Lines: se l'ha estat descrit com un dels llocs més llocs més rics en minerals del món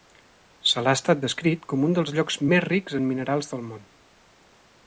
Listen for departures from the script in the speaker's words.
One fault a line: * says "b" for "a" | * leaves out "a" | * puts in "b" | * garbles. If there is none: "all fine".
* leaves out "llocs més"